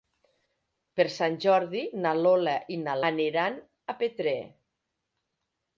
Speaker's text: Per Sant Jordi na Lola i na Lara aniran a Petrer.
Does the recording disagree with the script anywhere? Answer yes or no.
yes